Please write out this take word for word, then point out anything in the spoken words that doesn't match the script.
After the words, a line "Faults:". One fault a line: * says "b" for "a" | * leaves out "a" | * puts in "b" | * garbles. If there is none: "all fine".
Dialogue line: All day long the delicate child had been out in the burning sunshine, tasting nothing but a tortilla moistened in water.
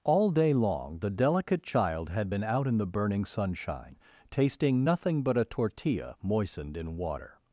All day long the delicate child had been out in the burning sunshine, tasting nothing but a tortilla moistened in water.
Faults:
all fine